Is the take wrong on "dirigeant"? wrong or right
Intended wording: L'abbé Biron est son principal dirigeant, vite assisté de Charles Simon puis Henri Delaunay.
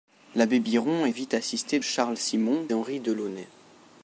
wrong